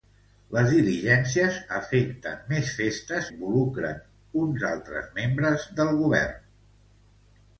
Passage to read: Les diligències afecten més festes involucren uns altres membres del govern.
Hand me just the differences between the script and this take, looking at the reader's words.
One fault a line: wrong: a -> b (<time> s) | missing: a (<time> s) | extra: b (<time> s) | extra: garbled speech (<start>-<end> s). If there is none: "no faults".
no faults